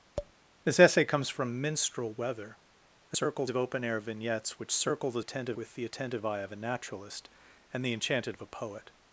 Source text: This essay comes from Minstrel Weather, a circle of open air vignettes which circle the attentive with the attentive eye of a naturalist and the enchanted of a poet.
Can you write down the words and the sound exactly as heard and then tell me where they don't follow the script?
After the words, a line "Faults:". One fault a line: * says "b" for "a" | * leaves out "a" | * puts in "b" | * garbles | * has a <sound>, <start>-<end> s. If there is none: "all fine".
This essay comes from Minstrel Weather, a circle of open air vignettes which circle the attentive with the attentive eye of a naturalist and the enchanted of a poet.
Faults:
* has a tap, 0.2-0.3 s